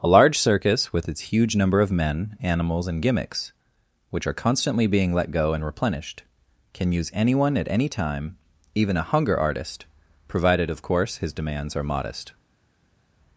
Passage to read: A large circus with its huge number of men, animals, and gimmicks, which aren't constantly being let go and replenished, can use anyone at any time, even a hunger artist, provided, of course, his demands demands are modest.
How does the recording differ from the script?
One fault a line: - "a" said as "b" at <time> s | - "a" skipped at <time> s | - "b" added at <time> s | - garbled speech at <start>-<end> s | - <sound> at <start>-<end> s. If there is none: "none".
- "aren't" said as "are" at 4.2 s
- "demands" skipped at 11.8 s